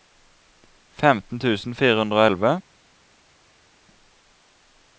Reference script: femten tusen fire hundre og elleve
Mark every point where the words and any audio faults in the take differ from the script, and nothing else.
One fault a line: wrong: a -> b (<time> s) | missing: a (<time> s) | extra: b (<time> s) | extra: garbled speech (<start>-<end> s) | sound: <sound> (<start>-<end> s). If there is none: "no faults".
no faults